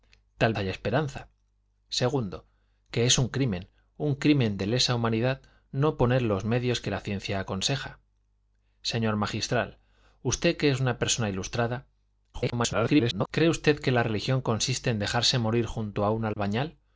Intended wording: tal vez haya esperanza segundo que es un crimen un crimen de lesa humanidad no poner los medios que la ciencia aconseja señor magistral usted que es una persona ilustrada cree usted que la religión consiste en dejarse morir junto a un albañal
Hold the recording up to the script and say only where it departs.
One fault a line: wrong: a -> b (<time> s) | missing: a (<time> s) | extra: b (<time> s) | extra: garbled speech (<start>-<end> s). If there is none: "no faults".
missing: vez (0.5 s)
extra: garbled speech (12.3-13.3 s)